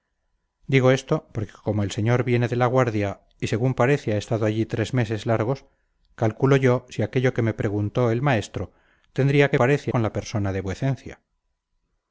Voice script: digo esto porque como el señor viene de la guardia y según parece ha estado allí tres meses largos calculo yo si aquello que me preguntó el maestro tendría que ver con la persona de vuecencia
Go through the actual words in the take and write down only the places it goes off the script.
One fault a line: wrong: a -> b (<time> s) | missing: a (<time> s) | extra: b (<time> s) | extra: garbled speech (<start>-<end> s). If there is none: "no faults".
wrong: ver -> parece (9.6 s)